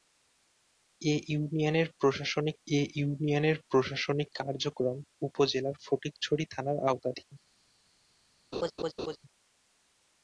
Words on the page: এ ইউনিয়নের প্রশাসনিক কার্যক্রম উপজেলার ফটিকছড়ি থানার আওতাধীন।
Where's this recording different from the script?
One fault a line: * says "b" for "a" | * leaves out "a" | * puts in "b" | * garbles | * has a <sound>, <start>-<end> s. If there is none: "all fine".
* puts in "এ ইউনিয়নের প্রশাসনিক"
* has a laugh, 8.5-9.2 s